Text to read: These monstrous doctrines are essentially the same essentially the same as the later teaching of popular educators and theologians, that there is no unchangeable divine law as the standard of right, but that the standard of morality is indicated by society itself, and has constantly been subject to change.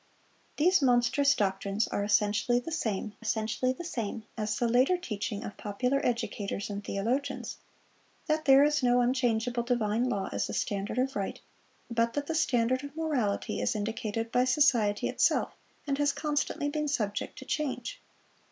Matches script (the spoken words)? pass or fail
pass